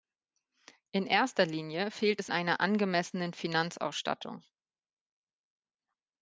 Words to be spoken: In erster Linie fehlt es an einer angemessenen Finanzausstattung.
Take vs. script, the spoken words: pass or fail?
fail